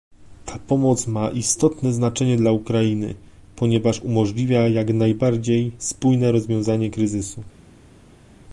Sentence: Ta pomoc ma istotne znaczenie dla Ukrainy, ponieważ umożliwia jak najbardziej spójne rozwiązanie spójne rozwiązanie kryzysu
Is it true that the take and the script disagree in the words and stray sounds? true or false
true